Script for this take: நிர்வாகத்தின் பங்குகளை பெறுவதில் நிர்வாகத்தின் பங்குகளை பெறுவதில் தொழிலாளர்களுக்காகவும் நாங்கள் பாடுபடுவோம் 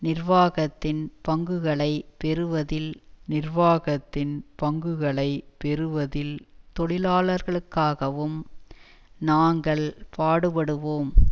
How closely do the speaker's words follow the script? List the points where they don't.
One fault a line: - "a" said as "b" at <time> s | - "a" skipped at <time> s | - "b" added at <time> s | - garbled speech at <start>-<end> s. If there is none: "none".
none